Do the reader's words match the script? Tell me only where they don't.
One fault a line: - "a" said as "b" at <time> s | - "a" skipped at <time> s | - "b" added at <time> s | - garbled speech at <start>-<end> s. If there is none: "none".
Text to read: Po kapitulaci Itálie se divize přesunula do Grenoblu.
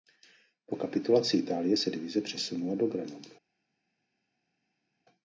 none